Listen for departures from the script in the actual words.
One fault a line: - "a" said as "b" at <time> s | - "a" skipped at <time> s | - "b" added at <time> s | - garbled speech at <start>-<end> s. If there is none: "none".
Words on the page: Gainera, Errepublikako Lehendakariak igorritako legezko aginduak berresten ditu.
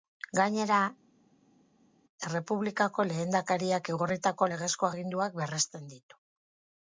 none